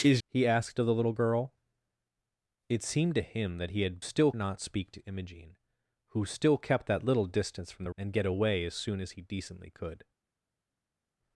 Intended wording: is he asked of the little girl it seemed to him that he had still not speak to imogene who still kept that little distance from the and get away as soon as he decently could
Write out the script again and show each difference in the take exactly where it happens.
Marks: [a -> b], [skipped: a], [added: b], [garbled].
is he asked of the little girl it seemed to him that he had still not speak to imogene who still kept that little distance from the and get away as soon as he decently could